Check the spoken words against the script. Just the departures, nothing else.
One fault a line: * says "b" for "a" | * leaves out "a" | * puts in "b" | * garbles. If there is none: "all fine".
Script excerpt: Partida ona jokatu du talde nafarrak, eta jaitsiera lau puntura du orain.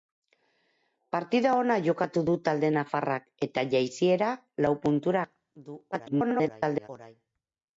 * garbles